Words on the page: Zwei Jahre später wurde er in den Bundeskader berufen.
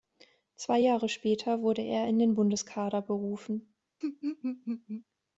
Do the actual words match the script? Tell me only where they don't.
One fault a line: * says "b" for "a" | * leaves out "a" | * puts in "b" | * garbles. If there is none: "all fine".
all fine